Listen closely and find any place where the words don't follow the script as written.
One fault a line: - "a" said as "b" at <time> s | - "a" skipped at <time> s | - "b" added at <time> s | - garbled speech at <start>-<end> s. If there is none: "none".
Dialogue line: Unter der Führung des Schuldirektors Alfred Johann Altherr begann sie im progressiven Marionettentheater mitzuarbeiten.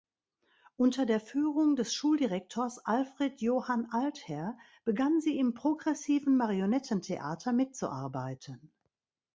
none